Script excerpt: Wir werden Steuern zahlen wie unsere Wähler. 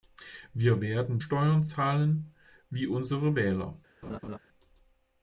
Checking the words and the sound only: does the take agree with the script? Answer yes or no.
no